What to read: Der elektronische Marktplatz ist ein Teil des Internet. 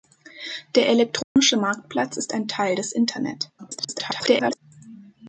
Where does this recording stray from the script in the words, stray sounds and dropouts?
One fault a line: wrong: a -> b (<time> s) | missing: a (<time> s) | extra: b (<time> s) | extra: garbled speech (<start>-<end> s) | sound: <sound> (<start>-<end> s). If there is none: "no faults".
sound: dropout (1.2-1.4 s)
extra: garbled speech (3.6-4.6 s)